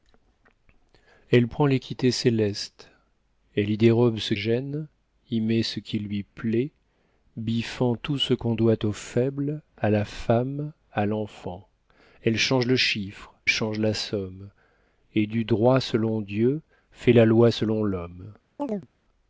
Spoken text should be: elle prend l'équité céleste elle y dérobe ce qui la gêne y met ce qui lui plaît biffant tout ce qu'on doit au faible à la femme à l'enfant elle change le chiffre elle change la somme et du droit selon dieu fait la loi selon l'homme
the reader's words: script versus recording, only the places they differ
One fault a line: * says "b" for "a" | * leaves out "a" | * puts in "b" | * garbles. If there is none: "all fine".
* leaves out "qui la"
* leaves out "elle"